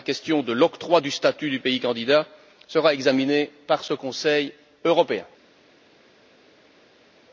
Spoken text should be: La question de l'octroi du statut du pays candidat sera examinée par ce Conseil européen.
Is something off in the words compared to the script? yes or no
no